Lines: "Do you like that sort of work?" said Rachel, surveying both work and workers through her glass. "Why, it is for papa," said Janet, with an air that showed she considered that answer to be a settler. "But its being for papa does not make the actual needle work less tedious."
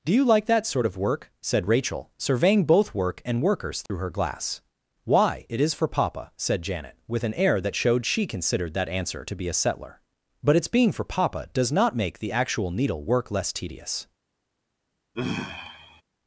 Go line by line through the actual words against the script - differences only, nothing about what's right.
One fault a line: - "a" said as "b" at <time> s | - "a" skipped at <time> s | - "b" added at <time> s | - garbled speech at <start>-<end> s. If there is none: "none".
none